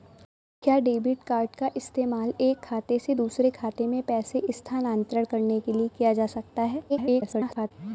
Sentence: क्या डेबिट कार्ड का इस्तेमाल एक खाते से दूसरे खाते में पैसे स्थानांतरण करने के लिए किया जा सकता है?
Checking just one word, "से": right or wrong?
right